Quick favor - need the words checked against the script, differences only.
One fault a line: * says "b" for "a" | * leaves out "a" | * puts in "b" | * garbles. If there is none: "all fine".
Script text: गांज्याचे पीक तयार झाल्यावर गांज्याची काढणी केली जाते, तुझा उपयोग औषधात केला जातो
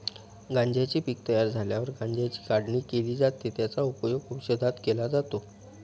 * says "त्याचा" for "तुझा"